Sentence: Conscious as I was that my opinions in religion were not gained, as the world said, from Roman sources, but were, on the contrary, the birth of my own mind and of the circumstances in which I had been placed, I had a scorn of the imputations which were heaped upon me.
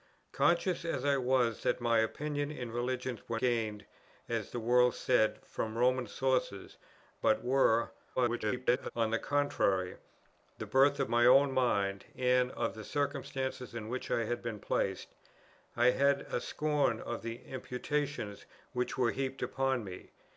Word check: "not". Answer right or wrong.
wrong